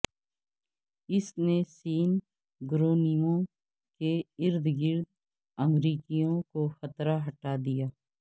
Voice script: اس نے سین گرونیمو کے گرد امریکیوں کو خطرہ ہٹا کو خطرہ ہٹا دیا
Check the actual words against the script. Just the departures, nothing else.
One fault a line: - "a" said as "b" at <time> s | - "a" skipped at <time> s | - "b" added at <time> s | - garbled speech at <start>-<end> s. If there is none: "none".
- "ارد" added at 4.4 s
- "کو خطرہ ہٹا" skipped at 7.6 s